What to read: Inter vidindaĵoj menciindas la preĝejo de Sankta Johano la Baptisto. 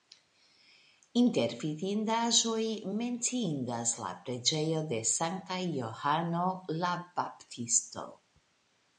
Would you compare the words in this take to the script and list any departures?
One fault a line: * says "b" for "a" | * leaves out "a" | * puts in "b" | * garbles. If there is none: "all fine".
all fine